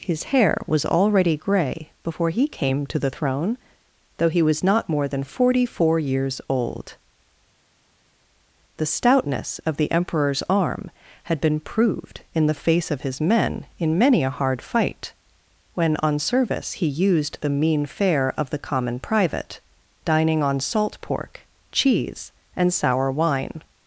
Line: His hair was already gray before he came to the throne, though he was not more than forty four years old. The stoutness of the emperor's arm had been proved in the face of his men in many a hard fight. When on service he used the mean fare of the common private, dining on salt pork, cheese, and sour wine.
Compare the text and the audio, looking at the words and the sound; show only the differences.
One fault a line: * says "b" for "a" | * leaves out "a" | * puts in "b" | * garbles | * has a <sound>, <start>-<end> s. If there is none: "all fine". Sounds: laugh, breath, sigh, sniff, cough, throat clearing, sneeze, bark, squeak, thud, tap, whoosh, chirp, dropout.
all fine